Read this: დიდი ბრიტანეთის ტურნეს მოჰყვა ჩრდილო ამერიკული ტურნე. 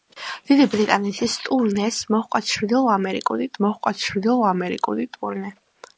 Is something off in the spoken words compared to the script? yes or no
yes